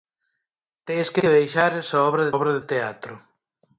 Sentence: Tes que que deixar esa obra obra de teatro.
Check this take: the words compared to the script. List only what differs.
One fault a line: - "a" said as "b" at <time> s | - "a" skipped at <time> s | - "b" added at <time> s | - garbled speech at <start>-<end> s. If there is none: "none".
none